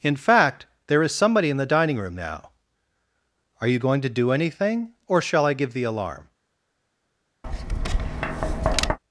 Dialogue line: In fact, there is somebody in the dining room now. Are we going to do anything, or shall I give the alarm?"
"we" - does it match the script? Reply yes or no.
no